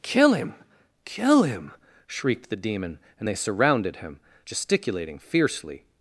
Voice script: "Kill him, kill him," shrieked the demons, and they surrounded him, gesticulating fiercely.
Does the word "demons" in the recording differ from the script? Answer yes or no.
yes